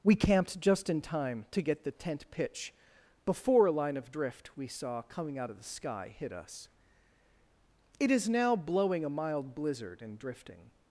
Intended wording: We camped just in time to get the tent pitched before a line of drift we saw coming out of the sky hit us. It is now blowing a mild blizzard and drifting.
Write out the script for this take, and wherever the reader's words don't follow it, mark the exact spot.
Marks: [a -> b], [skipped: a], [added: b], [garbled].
We camped just in time to get the tent [pitched -> pitch] before a line of drift we saw coming out of the sky hit us. It is now blowing a mild blizzard and drifting.